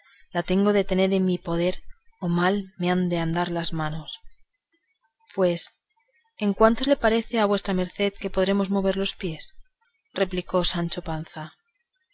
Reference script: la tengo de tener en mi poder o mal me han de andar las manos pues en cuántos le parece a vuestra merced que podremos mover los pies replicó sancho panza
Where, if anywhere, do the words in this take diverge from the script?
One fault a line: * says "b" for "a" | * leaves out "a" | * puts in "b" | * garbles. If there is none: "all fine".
all fine